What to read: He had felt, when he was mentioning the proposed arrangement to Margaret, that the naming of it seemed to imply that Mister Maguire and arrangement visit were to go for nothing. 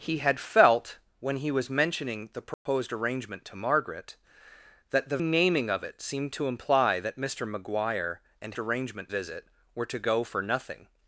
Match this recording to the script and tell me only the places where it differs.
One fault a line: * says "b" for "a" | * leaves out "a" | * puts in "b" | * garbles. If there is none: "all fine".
all fine